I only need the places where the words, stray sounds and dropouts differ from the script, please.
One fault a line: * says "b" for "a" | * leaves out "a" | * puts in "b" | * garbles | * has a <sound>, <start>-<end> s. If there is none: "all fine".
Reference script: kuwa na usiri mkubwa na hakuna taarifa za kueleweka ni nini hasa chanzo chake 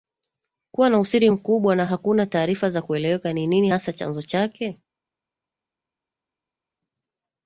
all fine